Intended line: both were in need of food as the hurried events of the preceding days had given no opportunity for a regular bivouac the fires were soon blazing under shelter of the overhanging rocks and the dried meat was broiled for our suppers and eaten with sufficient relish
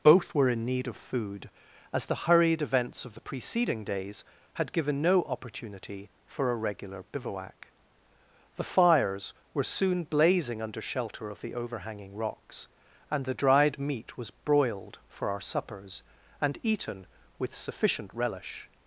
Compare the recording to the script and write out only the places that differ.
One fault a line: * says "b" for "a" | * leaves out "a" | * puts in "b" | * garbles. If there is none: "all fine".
all fine